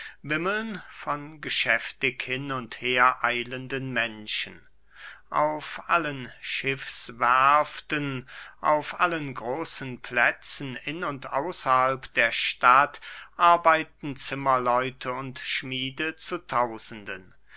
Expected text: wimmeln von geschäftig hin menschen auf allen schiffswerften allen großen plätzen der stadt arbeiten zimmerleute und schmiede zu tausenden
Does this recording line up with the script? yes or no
no